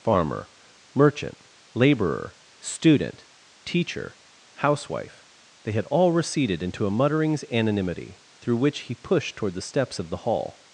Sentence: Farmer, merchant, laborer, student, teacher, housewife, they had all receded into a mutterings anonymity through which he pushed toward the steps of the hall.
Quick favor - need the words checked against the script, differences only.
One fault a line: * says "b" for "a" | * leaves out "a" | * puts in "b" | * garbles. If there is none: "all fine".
all fine